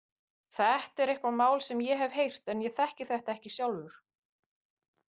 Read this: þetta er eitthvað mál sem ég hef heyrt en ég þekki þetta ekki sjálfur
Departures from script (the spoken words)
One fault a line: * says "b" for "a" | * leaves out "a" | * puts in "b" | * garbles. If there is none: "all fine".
all fine